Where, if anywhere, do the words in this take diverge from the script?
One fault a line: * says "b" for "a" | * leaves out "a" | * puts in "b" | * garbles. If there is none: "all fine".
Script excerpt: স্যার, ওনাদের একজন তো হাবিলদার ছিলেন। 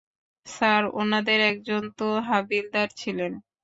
all fine